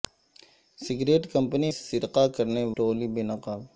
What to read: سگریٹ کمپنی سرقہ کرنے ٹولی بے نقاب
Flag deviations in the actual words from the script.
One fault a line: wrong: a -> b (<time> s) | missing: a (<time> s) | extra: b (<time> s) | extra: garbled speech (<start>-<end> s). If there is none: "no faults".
no faults